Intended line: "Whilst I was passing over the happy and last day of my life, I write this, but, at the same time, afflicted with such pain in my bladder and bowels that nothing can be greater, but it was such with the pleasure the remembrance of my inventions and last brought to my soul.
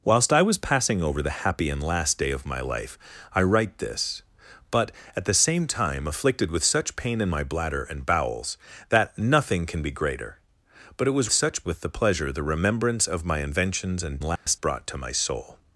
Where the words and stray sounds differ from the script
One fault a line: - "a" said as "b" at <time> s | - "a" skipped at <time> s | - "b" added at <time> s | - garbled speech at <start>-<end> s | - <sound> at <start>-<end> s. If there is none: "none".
- dropout at 14.4-14.5 s